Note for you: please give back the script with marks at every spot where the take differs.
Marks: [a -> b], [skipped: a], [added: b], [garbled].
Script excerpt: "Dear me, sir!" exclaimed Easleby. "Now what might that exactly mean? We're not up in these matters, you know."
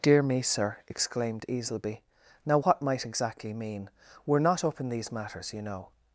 "Dear me, sir!" exclaimed Easleby. "Now what might [skipped: that] exactly mean? We're not up in these matters, you know."